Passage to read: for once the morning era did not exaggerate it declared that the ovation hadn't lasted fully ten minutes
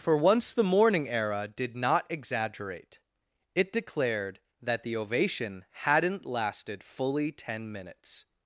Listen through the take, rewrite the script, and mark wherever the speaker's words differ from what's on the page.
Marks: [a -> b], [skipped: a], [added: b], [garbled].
for once the morning era did not exaggerate it declared that the ovation hadn't lasted fully ten minutes